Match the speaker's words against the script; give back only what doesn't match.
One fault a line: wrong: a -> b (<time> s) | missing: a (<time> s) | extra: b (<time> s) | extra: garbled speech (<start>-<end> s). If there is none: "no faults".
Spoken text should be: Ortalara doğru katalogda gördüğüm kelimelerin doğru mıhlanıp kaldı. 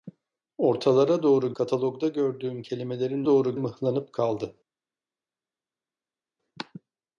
no faults